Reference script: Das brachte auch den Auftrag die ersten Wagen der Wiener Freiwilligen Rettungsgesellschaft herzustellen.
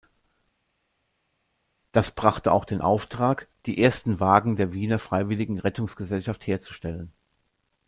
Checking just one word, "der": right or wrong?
right